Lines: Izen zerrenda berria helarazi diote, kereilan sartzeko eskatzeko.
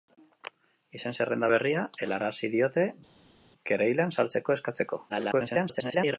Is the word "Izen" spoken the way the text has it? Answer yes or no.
yes